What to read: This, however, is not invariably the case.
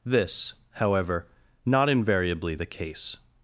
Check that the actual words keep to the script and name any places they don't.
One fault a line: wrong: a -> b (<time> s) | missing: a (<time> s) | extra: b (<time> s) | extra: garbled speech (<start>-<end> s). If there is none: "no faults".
missing: is (1.3 s)